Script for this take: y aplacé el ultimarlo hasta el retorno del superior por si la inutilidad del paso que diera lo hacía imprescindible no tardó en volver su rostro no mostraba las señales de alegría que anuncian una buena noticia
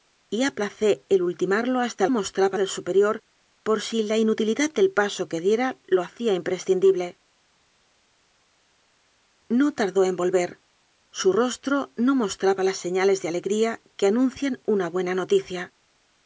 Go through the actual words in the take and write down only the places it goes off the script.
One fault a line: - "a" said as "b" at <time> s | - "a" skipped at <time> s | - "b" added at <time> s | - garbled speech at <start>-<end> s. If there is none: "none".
- "retorno" said as "mostraba" at 2.1 s